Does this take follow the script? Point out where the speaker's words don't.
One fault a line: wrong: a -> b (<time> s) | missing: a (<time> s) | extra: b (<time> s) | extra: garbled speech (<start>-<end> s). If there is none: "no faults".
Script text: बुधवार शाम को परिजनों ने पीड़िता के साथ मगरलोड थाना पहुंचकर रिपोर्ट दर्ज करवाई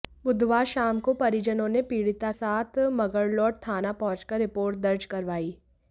missing: के (2.3 s)